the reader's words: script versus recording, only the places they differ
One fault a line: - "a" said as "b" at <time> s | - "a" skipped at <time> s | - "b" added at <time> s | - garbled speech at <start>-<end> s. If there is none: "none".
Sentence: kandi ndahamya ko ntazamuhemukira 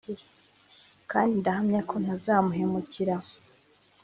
none